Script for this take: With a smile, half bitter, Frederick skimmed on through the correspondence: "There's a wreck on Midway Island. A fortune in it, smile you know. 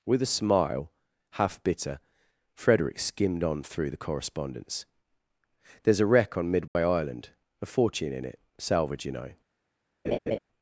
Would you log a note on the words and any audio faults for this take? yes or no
yes